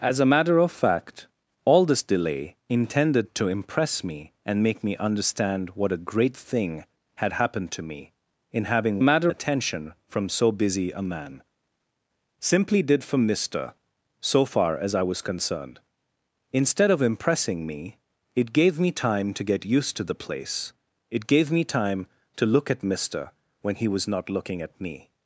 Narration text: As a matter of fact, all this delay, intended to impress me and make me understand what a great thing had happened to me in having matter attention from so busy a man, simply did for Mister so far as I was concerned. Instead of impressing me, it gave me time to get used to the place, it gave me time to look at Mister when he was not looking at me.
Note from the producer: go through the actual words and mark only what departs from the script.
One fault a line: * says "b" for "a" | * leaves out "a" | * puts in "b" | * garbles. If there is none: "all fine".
all fine